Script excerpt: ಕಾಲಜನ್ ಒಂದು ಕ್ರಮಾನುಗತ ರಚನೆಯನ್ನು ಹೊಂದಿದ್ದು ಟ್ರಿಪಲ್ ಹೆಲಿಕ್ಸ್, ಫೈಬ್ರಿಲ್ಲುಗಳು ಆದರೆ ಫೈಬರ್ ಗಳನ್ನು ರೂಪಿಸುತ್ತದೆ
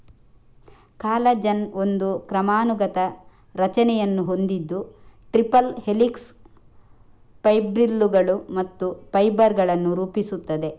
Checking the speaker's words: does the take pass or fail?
fail